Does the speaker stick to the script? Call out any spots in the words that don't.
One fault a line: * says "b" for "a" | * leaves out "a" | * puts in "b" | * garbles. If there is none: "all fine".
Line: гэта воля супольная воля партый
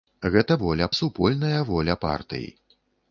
all fine